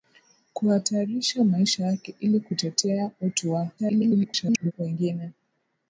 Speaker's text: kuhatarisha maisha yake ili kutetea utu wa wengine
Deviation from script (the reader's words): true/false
true